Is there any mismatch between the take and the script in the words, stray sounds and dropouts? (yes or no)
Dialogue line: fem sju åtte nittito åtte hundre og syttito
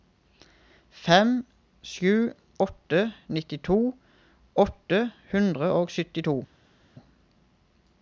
no